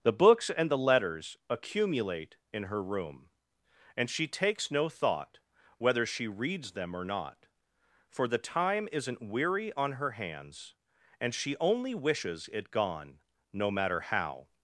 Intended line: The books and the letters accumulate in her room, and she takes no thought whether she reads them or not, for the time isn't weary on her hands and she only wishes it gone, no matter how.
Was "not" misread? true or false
false